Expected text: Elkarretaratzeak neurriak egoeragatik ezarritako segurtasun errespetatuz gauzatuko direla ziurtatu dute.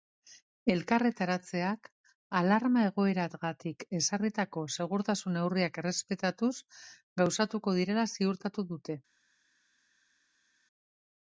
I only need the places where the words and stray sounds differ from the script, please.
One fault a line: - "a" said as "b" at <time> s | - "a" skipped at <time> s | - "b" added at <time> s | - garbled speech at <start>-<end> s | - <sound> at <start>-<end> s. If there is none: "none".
- "neurriak" said as "alarma" at 2.4 s
- "neurriak" added at 5.4 s